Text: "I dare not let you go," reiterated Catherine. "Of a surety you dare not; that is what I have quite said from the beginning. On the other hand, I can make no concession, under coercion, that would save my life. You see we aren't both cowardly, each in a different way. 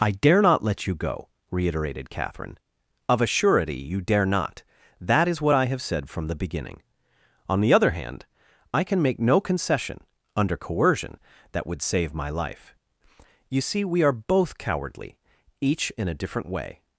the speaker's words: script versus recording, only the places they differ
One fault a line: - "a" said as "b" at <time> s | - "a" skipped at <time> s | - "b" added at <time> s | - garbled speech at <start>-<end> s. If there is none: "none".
- "quite" skipped at 5.8 s
- "aren't" said as "are" at 14.0 s